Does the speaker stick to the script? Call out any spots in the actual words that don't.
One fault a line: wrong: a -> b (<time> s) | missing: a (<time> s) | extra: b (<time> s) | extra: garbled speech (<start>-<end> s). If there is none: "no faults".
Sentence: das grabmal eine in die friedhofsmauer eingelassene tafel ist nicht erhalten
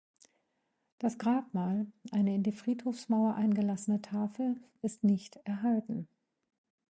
no faults